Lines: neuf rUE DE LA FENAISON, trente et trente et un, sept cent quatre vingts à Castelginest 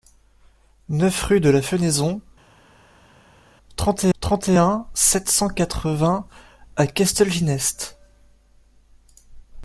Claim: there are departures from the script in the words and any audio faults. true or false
false